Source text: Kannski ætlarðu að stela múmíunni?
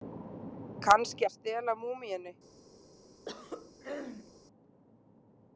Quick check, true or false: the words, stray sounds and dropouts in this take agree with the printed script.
false